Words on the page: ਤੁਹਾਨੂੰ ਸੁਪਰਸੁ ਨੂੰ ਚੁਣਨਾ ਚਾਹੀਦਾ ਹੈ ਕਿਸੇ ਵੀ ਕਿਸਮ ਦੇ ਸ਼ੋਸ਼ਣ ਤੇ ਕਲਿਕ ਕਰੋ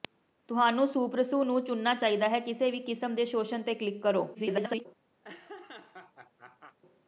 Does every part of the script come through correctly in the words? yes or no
no